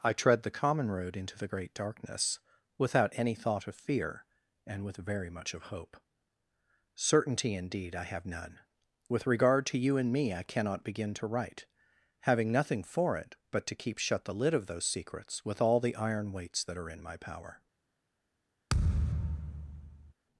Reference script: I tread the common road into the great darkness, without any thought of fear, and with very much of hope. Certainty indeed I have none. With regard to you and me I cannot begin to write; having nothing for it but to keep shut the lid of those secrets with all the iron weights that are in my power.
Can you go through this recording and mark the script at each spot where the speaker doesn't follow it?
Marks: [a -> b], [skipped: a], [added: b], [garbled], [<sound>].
I tread the common road into the great darkness, without any thought of fear, and with very much of hope. Certainty indeed I have none. With regard to you and me I cannot begin to write; having nothing for it but to keep shut the lid of those secrets with all the iron weights that are in my power. [thud]